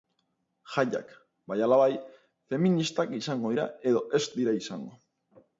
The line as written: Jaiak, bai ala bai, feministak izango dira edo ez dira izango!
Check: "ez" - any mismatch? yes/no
no